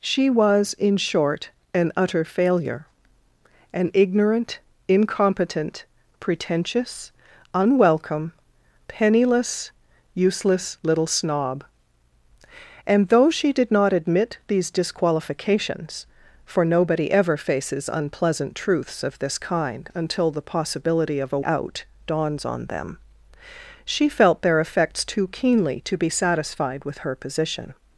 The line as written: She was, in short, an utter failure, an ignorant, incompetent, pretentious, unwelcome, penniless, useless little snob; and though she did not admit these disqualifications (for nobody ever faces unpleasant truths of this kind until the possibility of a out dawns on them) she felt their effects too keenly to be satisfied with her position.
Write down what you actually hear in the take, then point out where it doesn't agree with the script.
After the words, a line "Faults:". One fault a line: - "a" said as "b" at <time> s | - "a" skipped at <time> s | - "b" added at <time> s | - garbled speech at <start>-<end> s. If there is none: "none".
She was, in short, an utter failure, an ignorant, incompetent, pretentious, unwelcome, penniless, useless little snob; and though she did not admit these disqualifications (for nobody ever faces unpleasant truths of this kind until the possibility of a out dawns on them) she felt their effects too keenly to be satisfied with her position.
Faults:
none